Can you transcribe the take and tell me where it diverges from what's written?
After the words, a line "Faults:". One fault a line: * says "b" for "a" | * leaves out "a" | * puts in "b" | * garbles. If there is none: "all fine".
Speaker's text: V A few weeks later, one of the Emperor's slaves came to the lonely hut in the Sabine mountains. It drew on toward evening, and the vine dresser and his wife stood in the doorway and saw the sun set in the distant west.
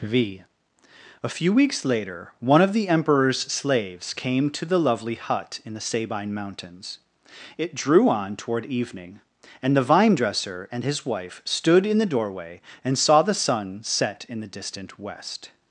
V A few weeks later, one of the Emperor's slaves came to the lovely hut in the Sabine mountains. It drew on toward evening, and the vine dresser and his wife stood in the doorway and saw the sun set in the distant west.
Faults:
* says "lovely" for "lonely"